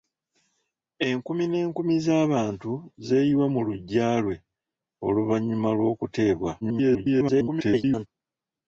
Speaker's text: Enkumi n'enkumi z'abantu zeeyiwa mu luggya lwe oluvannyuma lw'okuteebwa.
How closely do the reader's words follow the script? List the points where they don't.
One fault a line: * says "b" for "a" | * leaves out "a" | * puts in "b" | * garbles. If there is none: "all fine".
* garbles